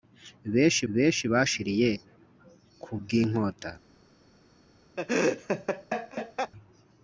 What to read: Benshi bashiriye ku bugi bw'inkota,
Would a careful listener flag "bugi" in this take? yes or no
yes